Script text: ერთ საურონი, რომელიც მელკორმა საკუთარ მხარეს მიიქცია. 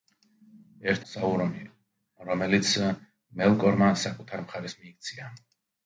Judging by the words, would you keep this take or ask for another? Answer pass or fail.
pass